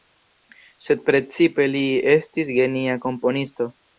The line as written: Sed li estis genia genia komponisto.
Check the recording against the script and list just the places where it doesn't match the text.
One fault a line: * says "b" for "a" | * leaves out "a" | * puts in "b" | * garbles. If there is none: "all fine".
* puts in "precipe"
* leaves out "genia"